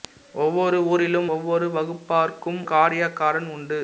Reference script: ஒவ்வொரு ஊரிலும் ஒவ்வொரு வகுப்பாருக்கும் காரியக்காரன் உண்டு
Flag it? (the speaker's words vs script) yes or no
no